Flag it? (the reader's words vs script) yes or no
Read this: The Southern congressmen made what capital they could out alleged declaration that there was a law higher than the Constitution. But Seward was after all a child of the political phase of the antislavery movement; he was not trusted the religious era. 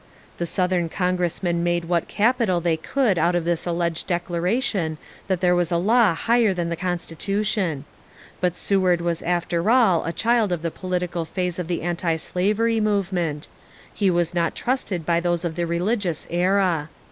yes